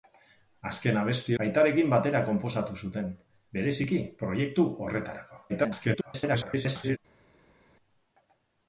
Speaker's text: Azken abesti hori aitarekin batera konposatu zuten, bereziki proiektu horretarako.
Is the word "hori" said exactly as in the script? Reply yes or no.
no